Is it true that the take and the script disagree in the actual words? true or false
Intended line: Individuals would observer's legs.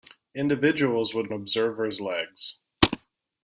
false